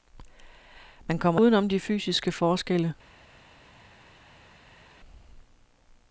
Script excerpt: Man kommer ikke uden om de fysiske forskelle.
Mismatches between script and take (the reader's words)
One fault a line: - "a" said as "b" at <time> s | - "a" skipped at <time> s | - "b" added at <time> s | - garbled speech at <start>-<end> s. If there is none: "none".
- "ikke" skipped at 1.4 s